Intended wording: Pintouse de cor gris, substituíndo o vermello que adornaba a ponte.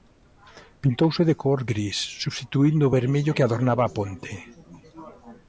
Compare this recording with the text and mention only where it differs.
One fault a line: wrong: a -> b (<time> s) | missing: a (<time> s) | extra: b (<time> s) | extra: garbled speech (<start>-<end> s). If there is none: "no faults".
no faults